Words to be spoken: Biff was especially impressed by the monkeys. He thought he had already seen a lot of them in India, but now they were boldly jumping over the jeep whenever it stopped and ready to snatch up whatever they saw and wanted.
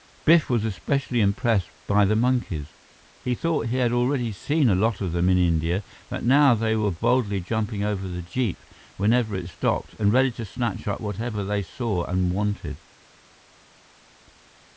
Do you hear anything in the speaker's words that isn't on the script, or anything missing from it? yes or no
no